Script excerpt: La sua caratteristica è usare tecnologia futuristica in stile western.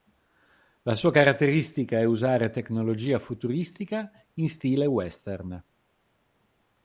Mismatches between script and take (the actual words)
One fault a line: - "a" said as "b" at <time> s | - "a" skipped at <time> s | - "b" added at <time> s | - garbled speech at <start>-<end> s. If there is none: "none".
none